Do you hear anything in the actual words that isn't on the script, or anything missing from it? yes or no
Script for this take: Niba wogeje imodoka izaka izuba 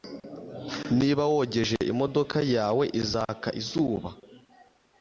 yes